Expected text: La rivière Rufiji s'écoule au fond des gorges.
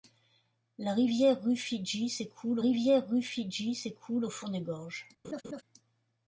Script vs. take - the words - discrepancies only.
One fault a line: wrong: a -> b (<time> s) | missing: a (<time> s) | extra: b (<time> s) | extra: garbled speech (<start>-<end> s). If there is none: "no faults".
extra: rivière Rufiji s'écoule (2.6 s)